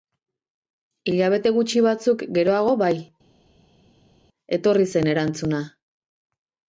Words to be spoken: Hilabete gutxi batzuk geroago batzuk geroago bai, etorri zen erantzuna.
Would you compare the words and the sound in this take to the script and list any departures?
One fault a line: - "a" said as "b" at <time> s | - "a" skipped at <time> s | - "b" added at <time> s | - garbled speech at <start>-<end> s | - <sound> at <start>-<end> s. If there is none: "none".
- "batzuk geroago" skipped at 2.7 s